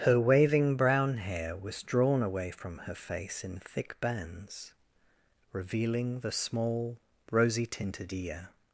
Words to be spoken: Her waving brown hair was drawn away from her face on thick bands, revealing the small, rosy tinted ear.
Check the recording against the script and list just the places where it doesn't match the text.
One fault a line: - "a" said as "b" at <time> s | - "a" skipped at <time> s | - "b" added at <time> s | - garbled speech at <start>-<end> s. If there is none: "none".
- "on" said as "in" at 3.4 s